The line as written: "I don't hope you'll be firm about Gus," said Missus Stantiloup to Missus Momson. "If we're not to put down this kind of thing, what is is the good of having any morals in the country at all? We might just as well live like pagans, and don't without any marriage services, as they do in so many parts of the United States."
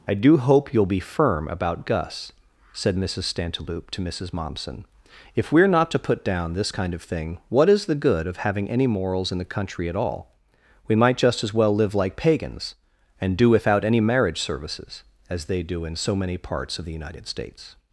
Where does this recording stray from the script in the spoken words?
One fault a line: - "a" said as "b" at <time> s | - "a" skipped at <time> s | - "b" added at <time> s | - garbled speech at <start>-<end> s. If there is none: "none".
- "don't" said as "do" at 0.1 s
- "is" skipped at 7.9 s
- "don't" said as "do" at 13.4 s